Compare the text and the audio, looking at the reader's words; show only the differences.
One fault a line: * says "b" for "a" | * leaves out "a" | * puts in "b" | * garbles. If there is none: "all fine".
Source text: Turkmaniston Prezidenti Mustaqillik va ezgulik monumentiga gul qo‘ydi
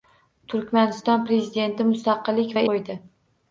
* leaves out "ezgulik monumentiga gul"